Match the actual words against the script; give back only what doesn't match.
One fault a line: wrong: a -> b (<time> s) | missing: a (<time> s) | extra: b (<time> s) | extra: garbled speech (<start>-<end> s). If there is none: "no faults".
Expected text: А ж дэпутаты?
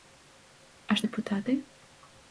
no faults